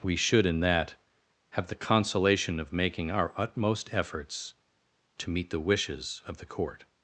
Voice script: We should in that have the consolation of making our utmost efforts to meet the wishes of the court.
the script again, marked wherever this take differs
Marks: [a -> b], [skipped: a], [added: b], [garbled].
We should in that have the consolation of making our utmost efforts to meet the wishes of the court.